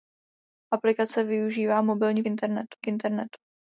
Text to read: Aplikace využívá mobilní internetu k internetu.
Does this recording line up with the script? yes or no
yes